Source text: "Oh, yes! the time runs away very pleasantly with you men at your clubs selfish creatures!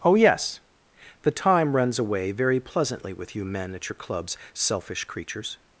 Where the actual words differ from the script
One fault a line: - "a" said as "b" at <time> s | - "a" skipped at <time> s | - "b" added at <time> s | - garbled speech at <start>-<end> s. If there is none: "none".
none